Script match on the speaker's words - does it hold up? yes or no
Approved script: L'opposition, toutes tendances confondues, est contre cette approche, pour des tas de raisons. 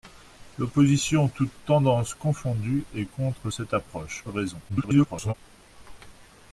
no